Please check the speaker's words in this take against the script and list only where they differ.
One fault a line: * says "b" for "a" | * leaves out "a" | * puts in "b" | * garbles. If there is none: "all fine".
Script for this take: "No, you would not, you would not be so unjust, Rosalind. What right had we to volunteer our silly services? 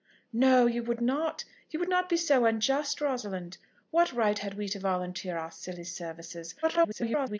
* garbles